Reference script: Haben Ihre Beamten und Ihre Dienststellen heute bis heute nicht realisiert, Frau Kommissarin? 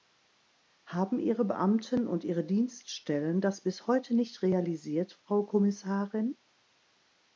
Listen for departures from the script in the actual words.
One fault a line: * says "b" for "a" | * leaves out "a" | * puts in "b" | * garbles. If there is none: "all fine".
* says "das" for "heute"